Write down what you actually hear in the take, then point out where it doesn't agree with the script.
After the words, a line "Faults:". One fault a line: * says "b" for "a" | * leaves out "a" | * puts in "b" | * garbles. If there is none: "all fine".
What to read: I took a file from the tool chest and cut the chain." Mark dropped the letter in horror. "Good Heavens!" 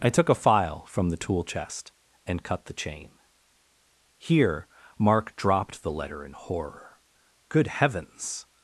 I took a file from the tool chest and cut the chain." Here Mark dropped the letter in horror. "Good Heavens!"
Faults:
* puts in "Here"